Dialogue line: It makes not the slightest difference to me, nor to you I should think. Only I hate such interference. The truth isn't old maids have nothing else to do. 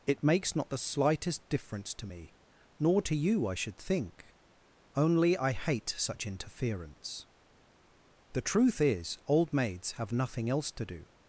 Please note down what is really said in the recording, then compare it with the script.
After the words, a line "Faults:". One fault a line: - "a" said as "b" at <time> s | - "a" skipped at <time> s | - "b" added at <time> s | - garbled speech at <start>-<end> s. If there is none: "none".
It makes not the slightest difference to me, nor to you I should think. Only I hate such interference. The truth is old maids have nothing else to do.
Faults:
- "isn't" said as "is" at 8.8 s